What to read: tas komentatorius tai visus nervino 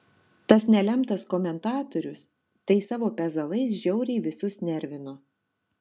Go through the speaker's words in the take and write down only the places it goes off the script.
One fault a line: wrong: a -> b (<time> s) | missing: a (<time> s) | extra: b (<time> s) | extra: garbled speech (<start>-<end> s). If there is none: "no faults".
extra: nelemtas (0.8 s)
extra: savo pezalais žiauriai (2.9 s)